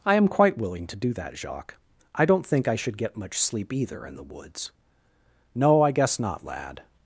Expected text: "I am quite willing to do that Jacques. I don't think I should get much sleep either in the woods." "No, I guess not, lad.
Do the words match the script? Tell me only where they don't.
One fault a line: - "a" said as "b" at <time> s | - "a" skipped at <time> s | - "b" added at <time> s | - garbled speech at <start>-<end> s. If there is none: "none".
none